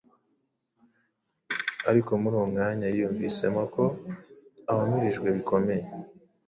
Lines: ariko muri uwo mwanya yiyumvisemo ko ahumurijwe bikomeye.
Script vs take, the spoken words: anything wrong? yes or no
no